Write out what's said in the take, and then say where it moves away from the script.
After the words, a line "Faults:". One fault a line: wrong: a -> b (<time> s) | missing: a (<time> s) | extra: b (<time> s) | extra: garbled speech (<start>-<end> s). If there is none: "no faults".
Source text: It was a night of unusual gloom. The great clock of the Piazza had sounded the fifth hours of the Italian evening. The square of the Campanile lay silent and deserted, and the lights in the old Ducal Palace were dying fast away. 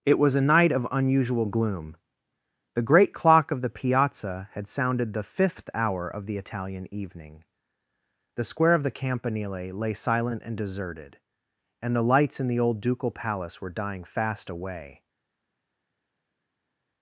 It was a night of unusual gloom. The great clock of the Piazza had sounded the fifth hour of the Italian evening. The square of the Campanile lay silent and deserted, and the lights in the old Ducal Palace were dying fast away.
Faults:
wrong: hours -> hour (5.8 s)